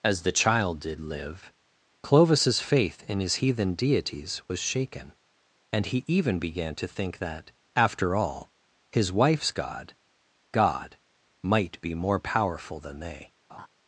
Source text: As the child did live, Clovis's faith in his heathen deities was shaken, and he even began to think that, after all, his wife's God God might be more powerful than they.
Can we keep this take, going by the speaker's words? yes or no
yes